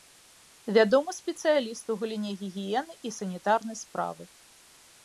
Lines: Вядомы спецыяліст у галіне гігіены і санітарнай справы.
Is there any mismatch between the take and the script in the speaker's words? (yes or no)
no